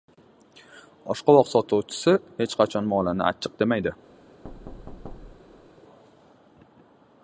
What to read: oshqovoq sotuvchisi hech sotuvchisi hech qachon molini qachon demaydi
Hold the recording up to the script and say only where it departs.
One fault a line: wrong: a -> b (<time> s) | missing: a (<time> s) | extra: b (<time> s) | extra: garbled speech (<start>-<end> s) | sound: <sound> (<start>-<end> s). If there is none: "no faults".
missing: sotuvchisi hech (2.6 s)
wrong: qachon -> achchiq (3.3 s)
sound: thud (4.4-5.7 s)